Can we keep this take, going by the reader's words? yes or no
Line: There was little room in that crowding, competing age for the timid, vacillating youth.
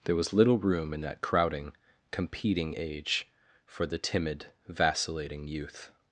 yes